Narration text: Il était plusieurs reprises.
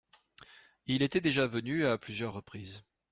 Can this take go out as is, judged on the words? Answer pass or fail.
fail